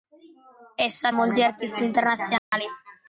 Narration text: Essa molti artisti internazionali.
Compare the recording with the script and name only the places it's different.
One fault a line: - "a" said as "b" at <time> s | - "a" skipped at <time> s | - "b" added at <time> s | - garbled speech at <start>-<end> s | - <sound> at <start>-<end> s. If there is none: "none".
- dropout at 2.4-2.5 s